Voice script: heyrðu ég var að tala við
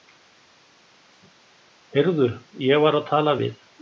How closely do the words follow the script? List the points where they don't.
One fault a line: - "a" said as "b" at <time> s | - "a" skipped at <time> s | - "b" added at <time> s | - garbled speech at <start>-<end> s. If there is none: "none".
none